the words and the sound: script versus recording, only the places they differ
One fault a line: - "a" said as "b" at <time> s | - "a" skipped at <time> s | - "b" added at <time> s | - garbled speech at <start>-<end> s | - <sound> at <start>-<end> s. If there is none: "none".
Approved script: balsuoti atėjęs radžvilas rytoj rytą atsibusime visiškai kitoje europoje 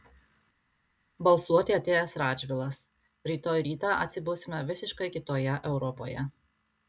none